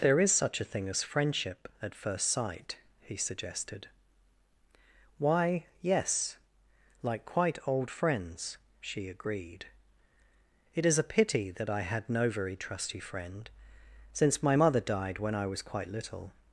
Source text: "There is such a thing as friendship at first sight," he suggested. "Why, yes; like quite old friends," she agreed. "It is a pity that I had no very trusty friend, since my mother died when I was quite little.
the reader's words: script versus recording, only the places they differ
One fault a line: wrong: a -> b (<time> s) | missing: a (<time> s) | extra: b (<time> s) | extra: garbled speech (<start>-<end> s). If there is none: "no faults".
no faults